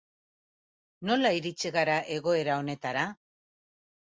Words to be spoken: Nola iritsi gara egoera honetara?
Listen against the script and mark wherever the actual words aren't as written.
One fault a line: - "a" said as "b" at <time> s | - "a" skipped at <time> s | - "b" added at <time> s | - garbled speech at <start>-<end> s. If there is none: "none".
none